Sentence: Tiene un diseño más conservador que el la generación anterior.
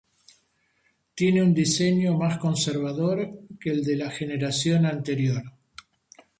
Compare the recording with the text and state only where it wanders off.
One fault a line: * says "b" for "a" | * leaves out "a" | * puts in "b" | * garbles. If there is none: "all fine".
* puts in "de"